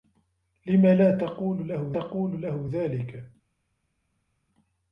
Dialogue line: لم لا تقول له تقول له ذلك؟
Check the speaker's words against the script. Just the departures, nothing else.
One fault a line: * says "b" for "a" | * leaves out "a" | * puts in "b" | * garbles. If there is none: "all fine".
all fine